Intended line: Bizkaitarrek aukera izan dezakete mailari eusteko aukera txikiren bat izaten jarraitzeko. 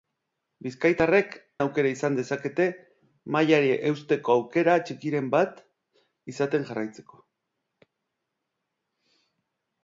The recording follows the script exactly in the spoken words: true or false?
true